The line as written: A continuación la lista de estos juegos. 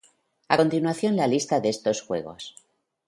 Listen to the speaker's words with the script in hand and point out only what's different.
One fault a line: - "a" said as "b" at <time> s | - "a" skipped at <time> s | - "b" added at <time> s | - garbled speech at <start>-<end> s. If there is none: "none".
none